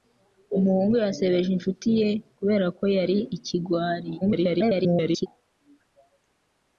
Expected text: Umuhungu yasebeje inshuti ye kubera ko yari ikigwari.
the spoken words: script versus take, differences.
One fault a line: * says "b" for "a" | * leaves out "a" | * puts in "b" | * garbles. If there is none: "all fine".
* garbles